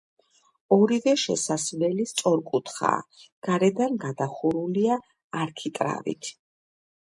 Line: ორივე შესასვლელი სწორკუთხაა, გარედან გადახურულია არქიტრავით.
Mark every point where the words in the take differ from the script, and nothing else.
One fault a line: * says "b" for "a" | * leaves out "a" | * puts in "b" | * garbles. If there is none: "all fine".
all fine